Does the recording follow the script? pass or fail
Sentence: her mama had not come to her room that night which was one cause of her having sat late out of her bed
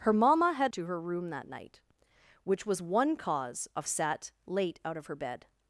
fail